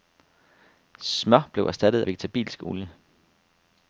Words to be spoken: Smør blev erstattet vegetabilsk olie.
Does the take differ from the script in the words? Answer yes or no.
no